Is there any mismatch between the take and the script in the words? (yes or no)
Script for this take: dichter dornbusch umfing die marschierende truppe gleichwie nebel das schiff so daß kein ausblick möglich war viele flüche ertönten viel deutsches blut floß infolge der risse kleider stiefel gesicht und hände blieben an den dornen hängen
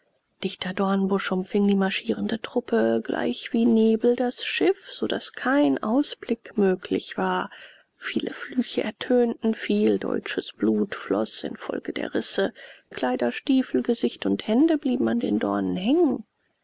no